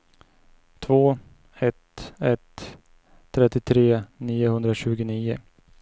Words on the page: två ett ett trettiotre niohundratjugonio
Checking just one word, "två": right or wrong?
right